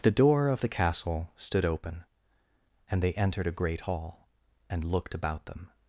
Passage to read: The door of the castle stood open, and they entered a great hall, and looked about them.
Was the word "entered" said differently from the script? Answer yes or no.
no